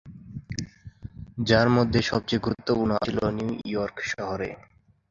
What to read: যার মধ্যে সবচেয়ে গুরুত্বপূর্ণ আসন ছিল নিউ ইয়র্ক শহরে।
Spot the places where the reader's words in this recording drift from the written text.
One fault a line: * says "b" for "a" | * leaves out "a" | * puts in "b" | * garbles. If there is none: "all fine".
* leaves out "আসন"